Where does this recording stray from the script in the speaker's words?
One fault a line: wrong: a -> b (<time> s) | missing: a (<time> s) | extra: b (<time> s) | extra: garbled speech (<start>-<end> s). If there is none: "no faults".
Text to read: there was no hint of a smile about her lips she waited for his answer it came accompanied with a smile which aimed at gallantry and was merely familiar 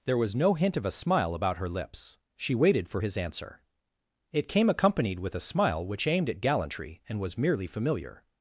no faults